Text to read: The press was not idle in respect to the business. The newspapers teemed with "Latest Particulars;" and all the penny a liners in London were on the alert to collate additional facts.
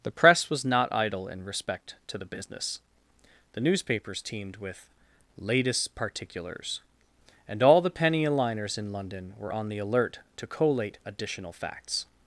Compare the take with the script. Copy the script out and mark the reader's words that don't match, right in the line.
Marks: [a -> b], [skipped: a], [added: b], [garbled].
The press was not idle in respect to the business. The newspapers teemed with "Latest Particulars;" and all the penny a liners in London were on the alert to collate additional facts.